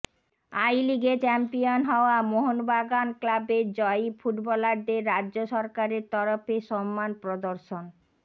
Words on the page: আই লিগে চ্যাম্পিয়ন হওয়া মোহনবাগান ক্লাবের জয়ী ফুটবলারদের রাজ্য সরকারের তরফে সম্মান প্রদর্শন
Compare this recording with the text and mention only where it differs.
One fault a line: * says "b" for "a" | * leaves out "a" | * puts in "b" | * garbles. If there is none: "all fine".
all fine